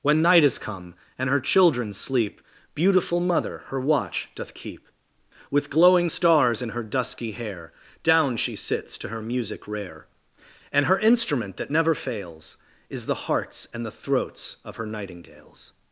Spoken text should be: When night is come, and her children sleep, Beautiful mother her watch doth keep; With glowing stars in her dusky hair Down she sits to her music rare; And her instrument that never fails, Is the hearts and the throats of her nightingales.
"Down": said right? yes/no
yes